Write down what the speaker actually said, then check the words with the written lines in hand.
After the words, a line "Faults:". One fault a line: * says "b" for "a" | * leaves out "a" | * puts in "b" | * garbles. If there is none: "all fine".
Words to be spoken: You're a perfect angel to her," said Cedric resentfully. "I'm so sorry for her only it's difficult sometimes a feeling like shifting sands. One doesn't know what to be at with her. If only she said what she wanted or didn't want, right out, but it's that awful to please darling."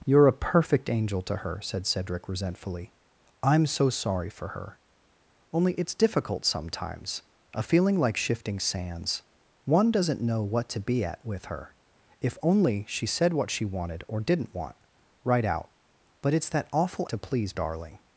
You're a perfect angel to her," said Cedric resentfully. "I'm so sorry for her only it's difficult sometimes a feeling like shifting sands. One doesn't know what to be at with her. If only she said what she wanted or didn't want, right out, but it's that awful to please darling."
Faults:
all fine